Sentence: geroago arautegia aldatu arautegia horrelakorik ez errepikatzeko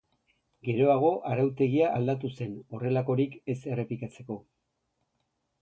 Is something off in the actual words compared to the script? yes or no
yes